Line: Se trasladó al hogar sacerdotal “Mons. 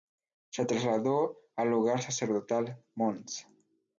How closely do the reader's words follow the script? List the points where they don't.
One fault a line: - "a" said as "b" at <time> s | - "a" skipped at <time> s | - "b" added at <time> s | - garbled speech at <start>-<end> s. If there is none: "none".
none